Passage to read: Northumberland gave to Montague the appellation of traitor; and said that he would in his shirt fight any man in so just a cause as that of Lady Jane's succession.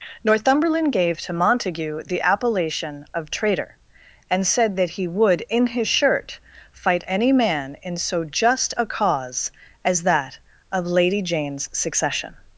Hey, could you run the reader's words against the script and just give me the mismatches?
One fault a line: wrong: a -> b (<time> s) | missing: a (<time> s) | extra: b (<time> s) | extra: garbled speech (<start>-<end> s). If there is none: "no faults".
no faults